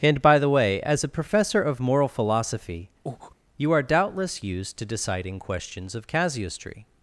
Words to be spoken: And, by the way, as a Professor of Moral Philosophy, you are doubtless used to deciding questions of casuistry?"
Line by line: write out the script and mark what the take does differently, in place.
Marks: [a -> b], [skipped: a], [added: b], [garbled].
And, by the way, as a Professor of Moral Philosophy, you are doubtless used to deciding questions of casuistry?"